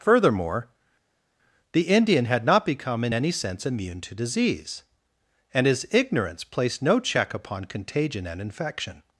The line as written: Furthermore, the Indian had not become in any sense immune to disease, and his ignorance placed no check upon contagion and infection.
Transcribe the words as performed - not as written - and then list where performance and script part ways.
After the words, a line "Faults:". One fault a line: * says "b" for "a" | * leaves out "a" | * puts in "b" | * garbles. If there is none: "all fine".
Furthermore, the Indian had not become in any sense immune to disease, and his ignorance placed no check upon contagion and infection.
Faults:
all fine